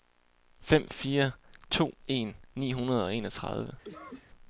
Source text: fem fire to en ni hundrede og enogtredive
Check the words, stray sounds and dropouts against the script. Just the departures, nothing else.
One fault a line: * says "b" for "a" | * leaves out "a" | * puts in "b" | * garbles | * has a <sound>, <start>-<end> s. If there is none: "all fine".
* has a cough, 3.8-4.3 s